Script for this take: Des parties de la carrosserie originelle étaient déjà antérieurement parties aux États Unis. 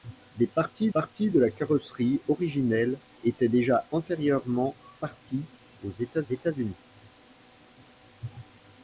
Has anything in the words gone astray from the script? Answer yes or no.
yes